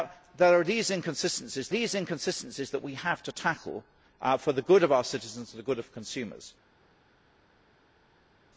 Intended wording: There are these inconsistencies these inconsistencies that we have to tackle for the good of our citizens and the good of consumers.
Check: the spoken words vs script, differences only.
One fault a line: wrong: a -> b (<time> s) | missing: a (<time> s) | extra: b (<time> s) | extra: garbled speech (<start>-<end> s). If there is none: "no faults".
no faults